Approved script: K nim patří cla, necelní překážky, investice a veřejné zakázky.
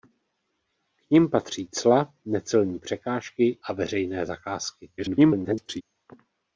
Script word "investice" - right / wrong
wrong